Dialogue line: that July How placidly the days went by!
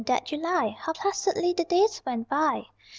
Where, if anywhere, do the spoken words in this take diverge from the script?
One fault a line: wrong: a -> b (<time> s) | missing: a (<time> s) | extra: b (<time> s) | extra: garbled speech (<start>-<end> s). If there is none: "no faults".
no faults